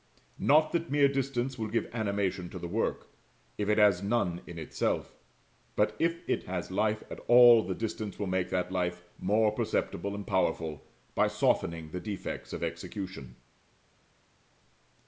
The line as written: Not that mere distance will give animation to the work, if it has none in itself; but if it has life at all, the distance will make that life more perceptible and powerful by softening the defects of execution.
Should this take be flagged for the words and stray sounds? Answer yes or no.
no